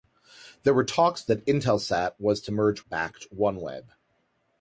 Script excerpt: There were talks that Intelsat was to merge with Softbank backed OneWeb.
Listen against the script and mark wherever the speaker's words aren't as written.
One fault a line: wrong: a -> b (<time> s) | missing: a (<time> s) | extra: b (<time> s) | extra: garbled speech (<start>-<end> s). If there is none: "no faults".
missing: with Softbank (2.8 s)